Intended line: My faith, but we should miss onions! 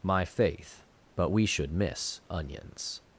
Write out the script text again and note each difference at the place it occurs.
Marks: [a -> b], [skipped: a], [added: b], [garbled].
My faith, but we should miss onions!